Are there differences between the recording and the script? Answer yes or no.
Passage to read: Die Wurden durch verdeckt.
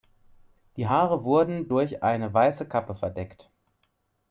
yes